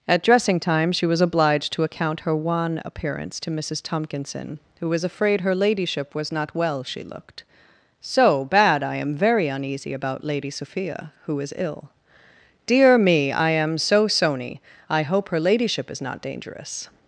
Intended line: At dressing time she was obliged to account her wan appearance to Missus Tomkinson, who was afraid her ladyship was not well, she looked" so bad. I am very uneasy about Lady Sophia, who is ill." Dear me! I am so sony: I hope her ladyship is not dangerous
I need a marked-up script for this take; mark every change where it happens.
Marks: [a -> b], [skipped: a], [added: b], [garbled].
At dressing time she was obliged to account her wan appearance to Missus Tomkinson, who was afraid her ladyship was not well, she looked" so bad. I am very uneasy about Lady Sophia, who is ill." Dear me! I am so sony: I hope her ladyship is not dangerous